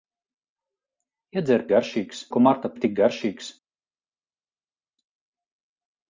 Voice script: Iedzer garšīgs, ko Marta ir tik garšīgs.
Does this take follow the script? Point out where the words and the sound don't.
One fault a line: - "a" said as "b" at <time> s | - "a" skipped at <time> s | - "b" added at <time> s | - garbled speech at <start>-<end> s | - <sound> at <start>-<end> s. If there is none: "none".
none